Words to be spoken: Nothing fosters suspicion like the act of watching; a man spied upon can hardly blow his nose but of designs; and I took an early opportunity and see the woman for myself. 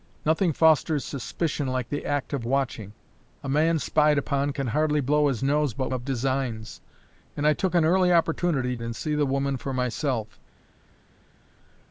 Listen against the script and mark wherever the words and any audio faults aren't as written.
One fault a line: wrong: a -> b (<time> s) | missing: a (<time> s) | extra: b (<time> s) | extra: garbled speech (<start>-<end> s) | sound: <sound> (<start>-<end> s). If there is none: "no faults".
no faults